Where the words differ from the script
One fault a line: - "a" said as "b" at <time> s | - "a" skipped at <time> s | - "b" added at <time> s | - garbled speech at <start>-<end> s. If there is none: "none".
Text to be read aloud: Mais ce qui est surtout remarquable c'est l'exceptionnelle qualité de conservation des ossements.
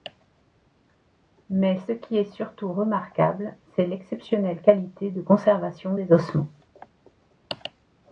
none